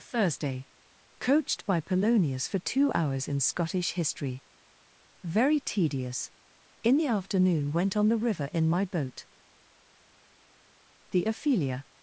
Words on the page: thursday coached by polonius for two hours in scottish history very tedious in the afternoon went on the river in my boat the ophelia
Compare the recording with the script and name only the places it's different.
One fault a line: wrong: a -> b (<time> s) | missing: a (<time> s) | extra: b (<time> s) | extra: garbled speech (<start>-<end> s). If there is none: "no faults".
no faults